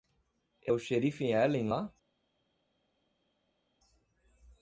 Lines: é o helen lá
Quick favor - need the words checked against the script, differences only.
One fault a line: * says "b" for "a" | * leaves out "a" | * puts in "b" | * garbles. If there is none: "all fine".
* puts in "xerife"